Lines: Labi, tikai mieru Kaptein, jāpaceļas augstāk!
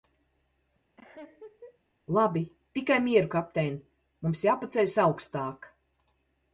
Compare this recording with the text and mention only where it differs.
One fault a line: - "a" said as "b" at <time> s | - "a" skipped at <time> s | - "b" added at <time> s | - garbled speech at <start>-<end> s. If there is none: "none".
- "mums" added at 4.3 s